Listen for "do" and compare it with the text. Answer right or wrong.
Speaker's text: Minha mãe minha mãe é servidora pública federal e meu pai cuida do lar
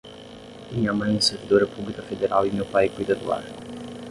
right